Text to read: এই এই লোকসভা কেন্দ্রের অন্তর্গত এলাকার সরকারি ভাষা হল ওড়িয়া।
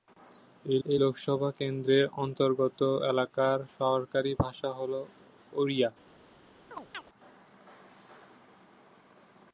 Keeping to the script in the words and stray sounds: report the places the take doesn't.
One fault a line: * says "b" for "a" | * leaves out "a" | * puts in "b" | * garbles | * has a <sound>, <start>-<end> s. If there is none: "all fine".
* has a chirp, 6.7-7.1 s